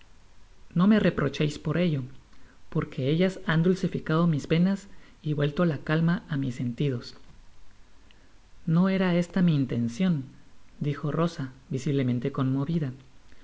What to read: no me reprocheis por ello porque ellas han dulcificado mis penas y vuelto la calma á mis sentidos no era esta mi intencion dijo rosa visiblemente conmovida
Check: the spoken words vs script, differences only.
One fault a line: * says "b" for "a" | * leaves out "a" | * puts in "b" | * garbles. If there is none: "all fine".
all fine